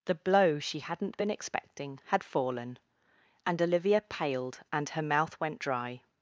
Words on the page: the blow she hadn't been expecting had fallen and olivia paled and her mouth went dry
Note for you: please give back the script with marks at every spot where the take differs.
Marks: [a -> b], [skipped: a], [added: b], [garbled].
the blow she hadn't been expecting had fallen and olivia paled and her mouth went dry